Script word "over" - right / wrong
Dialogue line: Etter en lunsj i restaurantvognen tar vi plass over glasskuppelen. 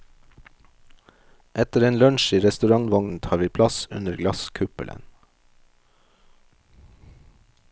wrong